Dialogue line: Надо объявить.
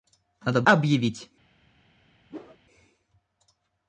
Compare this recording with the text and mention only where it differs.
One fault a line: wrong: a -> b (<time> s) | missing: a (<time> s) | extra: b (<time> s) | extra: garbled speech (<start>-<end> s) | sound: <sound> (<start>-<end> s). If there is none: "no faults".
sound: whoosh (2.3-2.6 s)